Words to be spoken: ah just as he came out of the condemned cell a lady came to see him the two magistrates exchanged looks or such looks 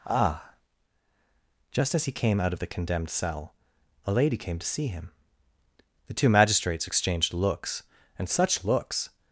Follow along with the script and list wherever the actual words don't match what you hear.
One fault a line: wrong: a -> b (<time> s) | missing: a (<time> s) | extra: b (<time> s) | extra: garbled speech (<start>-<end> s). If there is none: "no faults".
wrong: or -> and (8.2 s)